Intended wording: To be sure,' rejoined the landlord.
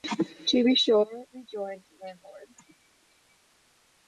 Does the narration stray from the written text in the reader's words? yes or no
no